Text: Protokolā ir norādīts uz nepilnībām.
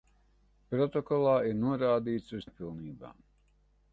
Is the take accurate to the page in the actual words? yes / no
yes